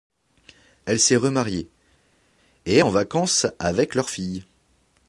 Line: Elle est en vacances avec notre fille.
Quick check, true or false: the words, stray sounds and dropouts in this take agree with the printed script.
false